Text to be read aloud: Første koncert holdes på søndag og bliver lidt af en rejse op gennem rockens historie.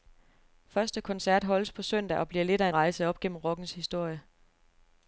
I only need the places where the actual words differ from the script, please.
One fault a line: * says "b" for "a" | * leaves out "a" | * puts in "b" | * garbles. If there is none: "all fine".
* leaves out "en"